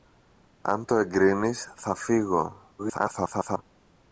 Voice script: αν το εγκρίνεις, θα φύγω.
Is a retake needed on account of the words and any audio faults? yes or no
yes